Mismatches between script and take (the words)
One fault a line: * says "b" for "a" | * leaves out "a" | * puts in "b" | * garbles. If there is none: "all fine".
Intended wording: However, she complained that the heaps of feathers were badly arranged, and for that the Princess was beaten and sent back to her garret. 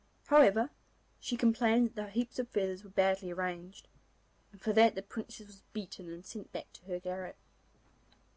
all fine